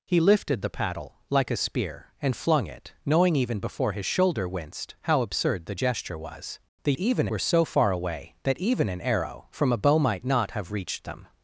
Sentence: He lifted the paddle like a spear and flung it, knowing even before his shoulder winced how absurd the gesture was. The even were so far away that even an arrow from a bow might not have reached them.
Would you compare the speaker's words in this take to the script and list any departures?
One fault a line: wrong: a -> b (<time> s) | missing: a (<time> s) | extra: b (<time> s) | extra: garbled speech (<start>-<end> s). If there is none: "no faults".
no faults